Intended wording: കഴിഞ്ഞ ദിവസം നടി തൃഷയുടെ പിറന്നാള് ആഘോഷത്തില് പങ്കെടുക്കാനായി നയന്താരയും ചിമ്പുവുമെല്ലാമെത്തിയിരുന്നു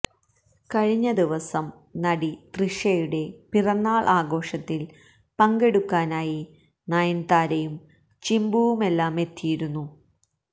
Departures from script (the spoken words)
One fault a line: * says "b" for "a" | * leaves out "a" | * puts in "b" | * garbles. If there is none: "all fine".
all fine